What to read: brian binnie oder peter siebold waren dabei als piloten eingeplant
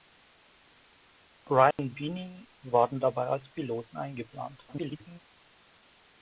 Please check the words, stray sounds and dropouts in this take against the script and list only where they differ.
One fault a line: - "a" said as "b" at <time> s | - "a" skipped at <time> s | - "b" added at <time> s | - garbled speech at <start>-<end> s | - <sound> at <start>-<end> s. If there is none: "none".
- dropout at 1.7-1.8 s
- "oder peter siebold" skipped at 2.5 s
- garbled speech at 4.7-5.2 s